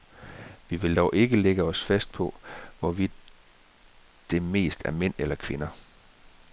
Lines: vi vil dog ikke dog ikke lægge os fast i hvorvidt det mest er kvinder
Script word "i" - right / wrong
wrong